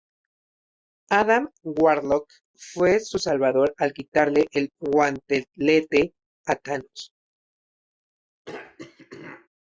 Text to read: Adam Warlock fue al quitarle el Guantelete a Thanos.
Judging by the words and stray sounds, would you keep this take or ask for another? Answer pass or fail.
fail